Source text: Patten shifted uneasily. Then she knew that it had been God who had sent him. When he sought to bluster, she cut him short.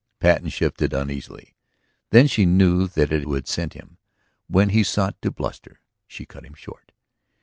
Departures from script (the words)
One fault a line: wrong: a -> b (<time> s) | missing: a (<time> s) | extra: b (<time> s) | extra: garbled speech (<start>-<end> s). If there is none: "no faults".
missing: had been God (3.3 s)